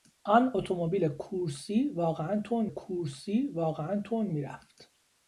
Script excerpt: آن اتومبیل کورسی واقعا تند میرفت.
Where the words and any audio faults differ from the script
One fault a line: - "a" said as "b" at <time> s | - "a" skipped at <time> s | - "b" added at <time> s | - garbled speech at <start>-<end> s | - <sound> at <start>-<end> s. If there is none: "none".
- "کورسی واقعا تند" added at 2.7 s